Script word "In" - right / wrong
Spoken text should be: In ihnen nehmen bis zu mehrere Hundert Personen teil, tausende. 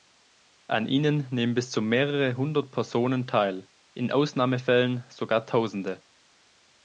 wrong